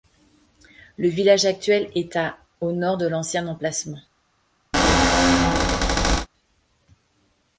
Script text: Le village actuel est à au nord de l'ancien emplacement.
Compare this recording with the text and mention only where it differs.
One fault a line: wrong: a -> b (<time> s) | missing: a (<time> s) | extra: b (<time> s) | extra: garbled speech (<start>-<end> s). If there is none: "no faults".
no faults